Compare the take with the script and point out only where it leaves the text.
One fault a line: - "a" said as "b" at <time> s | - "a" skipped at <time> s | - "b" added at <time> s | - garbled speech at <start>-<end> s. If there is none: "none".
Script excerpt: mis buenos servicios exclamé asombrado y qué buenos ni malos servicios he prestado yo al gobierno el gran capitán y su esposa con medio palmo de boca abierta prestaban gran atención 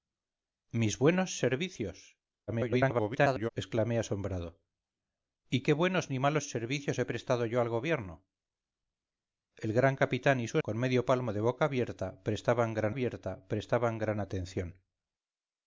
- garbled speech at 2.5-3.5 s
- "esposa" skipped at 10.6 s
- "abierta prestaban gran" added at 12.9 s